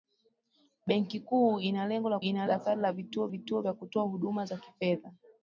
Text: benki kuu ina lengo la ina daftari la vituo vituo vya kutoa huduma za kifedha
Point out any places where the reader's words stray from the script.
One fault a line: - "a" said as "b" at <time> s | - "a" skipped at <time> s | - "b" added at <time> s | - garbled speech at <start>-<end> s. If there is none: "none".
none